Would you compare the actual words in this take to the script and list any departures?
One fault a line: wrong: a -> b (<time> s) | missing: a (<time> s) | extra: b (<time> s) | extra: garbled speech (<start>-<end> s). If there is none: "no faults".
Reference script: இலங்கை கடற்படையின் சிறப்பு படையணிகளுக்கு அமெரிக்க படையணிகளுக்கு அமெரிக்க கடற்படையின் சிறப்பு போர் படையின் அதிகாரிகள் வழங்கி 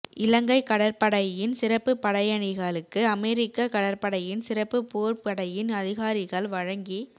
missing: படையணிகளுக்கு அமெரிக்க (3.7 s)